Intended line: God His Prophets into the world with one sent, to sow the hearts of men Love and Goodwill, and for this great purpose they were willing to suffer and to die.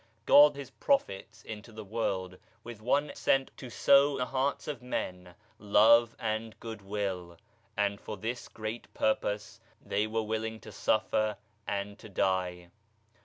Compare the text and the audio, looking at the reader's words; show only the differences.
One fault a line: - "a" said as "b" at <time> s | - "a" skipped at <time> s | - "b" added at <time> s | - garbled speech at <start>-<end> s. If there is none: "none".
none